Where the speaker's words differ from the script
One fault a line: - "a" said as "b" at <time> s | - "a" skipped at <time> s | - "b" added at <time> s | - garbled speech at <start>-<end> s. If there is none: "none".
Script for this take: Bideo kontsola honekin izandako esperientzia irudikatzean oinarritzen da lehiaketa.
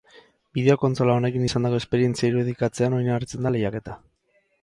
none